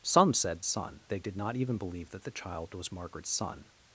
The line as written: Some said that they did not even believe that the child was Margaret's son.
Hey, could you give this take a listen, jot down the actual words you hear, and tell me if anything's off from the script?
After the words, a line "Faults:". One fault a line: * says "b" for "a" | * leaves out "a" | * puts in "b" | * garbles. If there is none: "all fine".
Some said son they did not even believe that the child was Margaret's son.
Faults:
* says "son" for "that"